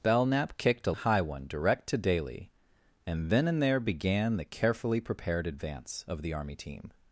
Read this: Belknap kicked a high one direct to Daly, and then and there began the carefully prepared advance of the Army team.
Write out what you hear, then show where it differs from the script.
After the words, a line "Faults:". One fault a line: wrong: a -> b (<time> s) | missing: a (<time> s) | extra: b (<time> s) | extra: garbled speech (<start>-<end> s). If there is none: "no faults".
Belknap kicked a high one direct to Daly, and then and there began the carefully prepared advance of the Army team.
Faults:
no faults